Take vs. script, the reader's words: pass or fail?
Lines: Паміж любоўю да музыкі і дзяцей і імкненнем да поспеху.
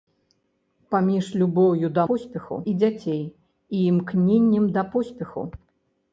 fail